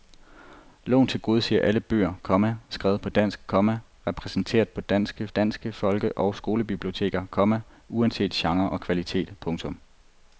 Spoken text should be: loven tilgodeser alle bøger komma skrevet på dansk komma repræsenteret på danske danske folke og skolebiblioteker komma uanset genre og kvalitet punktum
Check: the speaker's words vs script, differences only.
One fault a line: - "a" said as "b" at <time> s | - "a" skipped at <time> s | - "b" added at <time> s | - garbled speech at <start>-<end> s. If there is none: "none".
none